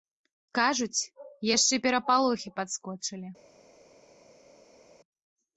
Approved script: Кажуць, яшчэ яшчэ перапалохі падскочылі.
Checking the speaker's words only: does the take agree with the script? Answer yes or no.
no